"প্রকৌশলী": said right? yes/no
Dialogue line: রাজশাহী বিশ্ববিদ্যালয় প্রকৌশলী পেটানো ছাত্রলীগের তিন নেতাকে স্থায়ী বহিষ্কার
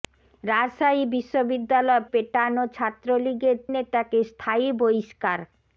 no